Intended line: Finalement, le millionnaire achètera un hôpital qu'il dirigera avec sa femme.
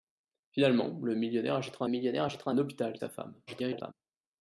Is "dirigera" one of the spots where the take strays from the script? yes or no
yes